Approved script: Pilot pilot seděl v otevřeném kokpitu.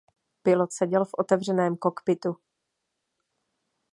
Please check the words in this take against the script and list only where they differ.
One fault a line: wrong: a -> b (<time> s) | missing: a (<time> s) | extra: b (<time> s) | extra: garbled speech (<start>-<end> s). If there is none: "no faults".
missing: pilot (0.7 s)